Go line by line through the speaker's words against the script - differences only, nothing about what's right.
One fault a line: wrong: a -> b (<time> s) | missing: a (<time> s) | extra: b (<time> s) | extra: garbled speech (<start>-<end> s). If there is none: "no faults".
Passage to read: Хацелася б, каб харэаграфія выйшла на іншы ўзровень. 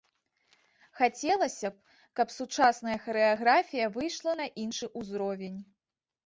extra: сучасная (2.4 s)